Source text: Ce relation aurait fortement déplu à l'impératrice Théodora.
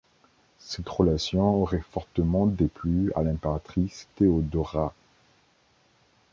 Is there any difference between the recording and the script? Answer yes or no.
yes